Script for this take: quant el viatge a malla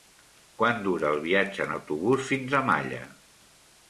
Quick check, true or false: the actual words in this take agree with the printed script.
false